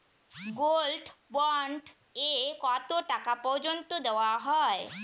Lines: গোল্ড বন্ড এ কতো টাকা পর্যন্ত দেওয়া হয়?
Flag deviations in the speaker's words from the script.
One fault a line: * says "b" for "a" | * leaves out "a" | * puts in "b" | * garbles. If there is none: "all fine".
all fine